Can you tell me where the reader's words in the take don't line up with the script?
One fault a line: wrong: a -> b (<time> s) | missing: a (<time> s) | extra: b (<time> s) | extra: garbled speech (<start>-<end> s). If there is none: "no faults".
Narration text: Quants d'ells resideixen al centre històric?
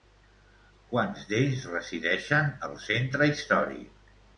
no faults